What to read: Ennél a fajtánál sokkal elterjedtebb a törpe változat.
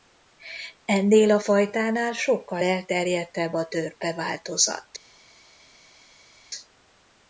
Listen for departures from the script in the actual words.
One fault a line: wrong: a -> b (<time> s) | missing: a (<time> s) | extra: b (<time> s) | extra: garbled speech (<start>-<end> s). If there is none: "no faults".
no faults